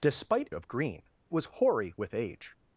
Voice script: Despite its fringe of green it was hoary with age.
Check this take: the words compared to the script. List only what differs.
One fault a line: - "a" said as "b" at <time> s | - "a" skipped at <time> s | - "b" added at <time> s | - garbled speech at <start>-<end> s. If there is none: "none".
- "its fringe" skipped at 0.5 s
- "it" skipped at 1.0 s